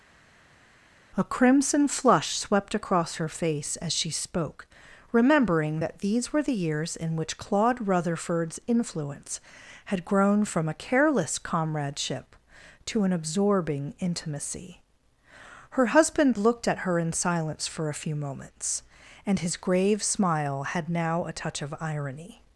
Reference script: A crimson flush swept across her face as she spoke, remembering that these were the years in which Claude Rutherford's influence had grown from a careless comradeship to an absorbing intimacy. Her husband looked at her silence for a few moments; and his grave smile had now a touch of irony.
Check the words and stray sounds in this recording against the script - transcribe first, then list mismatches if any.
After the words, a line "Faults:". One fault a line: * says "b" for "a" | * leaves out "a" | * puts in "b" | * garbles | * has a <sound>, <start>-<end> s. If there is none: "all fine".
A crimson flush swept across her face as she spoke, remembering that these were the years in which Claude Rutherford's influence had grown from a careless comradeship to an absorbing intimacy. Her husband looked at her in silence for a few moments; and his grave smile had now a touch of irony.
Faults:
* puts in "in"